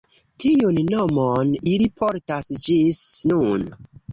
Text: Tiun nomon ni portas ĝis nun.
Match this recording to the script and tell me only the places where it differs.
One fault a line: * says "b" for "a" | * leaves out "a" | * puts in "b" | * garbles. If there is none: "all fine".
* says "ili" for "ni"